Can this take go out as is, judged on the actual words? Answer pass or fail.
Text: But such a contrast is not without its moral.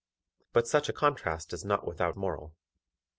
fail